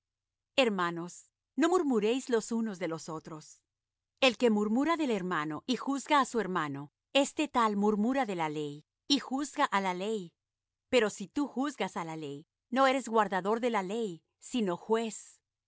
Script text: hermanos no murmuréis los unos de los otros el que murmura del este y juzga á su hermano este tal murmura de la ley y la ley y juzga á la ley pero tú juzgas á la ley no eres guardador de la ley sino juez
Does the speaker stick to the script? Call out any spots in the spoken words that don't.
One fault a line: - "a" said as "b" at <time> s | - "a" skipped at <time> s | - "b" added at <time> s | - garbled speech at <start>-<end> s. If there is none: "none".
- "este" said as "hermano" at 5.1 s
- "la ley y" skipped at 9.2 s
- "si" added at 11.1 s